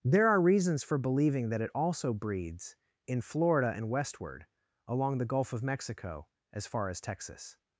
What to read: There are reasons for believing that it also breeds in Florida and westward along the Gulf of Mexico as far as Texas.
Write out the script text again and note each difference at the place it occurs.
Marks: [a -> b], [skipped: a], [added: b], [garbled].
There are reasons for believing that it also breeds in Florida and westward along the Gulf of Mexico as far as Texas.